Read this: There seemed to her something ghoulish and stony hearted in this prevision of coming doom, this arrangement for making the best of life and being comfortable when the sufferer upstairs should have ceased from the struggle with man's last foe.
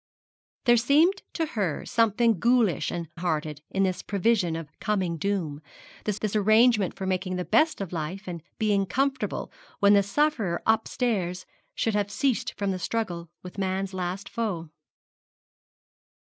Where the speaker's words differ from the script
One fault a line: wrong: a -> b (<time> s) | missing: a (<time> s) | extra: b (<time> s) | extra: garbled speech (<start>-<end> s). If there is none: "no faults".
missing: stony (3.1 s)
extra: this (6.2 s)